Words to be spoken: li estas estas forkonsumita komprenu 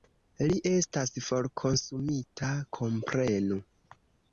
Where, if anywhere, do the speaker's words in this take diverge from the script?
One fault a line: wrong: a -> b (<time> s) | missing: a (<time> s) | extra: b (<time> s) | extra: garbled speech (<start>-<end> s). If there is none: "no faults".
missing: estas (1.1 s)